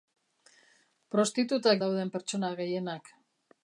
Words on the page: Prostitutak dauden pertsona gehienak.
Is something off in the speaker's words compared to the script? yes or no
no